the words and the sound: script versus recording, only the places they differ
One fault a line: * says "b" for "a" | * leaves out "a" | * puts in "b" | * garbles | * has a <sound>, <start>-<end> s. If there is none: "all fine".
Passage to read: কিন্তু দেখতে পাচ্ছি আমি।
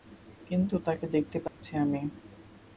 * puts in "তাকে"
* has a dropout, 1.5-1.6 s